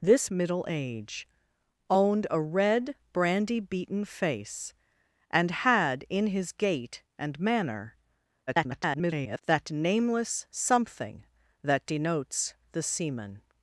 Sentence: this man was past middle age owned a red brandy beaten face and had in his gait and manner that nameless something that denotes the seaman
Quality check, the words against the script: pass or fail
fail